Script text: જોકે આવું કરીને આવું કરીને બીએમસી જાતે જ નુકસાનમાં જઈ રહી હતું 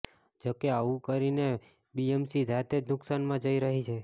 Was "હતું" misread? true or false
true